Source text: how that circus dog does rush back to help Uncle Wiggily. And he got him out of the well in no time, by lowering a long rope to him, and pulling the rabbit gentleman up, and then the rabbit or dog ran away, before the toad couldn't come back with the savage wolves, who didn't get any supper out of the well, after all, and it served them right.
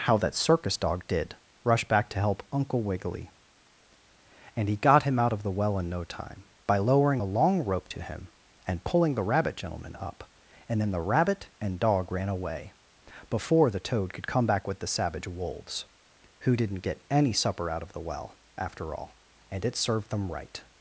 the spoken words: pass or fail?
fail